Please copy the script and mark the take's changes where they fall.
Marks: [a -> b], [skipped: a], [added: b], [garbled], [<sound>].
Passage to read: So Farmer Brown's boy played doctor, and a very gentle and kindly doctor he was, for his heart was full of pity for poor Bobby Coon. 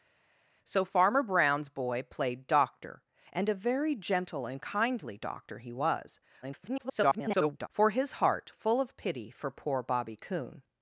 So Farmer Brown's boy played doctor, and a very gentle and kindly doctor he was, [garbled] for his heart [skipped: was] full of pity for poor Bobby Coon.